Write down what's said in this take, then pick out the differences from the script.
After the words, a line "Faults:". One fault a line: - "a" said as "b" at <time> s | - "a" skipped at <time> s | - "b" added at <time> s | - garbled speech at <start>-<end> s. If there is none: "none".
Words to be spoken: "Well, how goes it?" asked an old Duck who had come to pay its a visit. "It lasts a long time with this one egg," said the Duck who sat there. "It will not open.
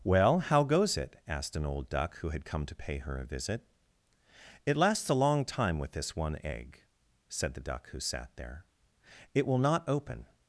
"Well, how goes it?" asked an old Duck who had come to pay her a visit. "It lasts a long time with this one egg," said the Duck who sat there. "It will not open.
Faults:
- "its" said as "her" at 3.0 s